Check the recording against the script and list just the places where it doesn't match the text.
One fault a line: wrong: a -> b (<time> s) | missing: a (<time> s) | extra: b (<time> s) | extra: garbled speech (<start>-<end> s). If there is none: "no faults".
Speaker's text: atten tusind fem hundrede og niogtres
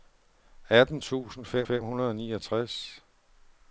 extra: fem (1.6 s)